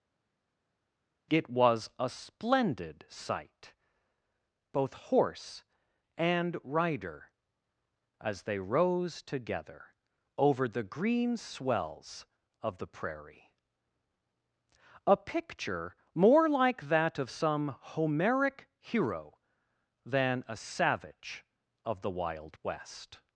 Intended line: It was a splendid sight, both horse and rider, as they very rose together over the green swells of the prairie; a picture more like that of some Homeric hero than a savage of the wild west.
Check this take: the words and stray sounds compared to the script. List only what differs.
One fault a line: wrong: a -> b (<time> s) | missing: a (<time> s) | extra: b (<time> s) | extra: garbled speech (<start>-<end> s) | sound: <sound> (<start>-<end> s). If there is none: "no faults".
missing: very (8.6 s)